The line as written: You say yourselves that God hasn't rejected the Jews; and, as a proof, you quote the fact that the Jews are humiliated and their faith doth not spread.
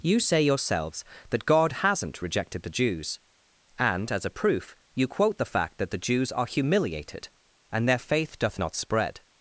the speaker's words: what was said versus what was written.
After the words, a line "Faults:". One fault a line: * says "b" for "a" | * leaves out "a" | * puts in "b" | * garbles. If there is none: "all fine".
You say yourselves that God hasn't rejected the Jews; and, as a proof, you quote the fact that the Jews are humiliated and their faith doth not spread.
Faults:
all fine